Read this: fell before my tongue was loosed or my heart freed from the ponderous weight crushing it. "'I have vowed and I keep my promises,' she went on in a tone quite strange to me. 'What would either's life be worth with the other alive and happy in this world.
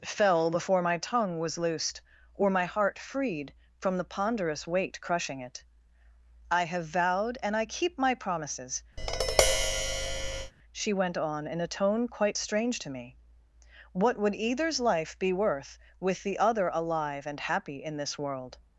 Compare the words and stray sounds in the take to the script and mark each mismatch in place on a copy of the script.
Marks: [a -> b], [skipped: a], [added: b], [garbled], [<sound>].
fell before my tongue was loosed or my heart freed from the ponderous weight crushing it. "'I have vowed and I keep my promises,' [tap] she went on in a tone quite strange to me. 'What would either's life be worth with the other alive and happy in this world.